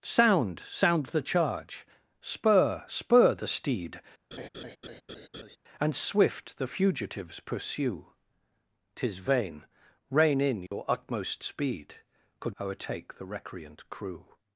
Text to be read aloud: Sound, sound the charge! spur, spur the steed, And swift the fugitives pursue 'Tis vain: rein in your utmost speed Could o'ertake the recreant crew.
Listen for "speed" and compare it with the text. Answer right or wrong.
right